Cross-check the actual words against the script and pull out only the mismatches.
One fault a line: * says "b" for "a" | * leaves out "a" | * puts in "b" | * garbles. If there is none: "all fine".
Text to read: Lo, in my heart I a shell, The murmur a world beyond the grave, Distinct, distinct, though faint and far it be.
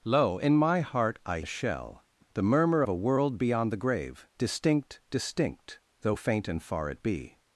all fine